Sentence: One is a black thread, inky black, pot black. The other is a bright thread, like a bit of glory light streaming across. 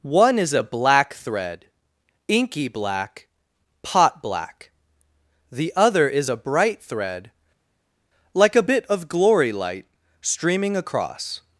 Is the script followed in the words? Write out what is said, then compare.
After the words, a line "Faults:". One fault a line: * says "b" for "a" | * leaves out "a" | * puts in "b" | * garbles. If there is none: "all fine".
One is a black thread, inky black, pot black. The other is a bright thread, like a bit of glory light streaming across.
Faults:
all fine